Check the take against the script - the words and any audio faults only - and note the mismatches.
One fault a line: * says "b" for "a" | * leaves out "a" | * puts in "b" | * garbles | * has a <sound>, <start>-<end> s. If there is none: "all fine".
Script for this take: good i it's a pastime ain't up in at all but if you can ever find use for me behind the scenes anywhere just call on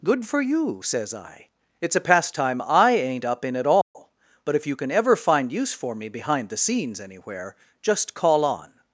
* puts in "for you says"
* puts in "i"
* has a dropout, 3.8-4.0 s